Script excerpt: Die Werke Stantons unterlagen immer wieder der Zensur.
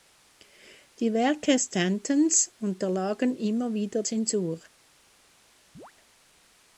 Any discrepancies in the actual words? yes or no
yes